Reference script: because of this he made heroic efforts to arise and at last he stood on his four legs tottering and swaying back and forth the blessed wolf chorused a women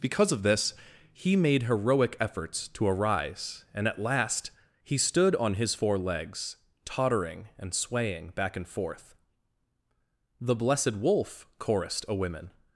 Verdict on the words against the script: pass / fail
pass